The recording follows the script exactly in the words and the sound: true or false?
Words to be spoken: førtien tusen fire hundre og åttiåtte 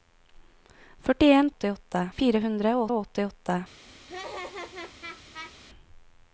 false